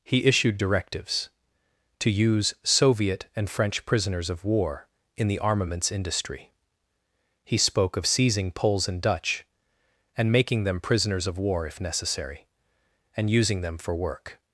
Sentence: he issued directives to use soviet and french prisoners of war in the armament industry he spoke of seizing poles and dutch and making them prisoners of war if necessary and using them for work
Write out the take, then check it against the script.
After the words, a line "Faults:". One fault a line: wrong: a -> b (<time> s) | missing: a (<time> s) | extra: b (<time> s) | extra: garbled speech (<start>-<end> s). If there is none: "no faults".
he issued directives to use soviet and french prisoners of war in the armaments industry he spoke of seizing poles and dutch and making them prisoners of war if necessary and using them for work
Faults:
wrong: armament -> armaments (5.4 s)